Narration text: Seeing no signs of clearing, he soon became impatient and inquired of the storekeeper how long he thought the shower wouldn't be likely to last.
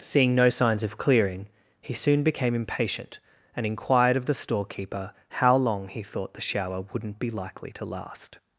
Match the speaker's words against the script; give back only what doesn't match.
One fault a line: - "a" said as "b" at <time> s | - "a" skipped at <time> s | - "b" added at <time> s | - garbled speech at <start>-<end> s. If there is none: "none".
none